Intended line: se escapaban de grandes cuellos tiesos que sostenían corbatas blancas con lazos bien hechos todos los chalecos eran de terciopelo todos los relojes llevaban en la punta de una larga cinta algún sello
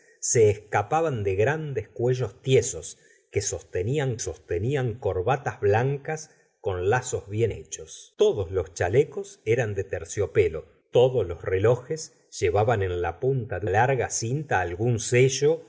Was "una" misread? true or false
true